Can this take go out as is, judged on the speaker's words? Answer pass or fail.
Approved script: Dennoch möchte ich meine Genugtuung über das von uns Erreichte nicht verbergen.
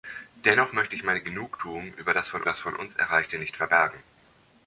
fail